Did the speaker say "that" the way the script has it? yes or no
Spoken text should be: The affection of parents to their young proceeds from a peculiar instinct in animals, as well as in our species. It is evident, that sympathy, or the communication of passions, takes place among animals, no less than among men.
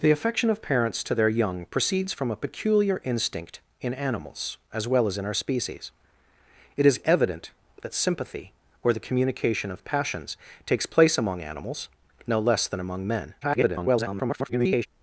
yes